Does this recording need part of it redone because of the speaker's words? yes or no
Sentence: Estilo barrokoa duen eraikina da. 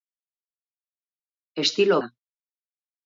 yes